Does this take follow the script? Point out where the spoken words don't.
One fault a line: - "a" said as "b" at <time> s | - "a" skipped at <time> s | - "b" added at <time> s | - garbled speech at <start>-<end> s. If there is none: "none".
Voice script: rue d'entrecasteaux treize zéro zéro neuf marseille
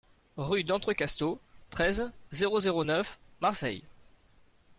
none